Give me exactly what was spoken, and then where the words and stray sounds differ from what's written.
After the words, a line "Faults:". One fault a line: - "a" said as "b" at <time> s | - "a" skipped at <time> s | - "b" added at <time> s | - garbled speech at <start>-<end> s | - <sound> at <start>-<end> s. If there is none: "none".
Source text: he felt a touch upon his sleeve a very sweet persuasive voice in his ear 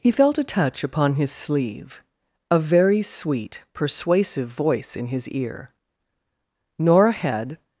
he felt a touch upon his sleeve a very sweet persuasive voice in his ear nora had
Faults:
- "nora had" added at 6.8 s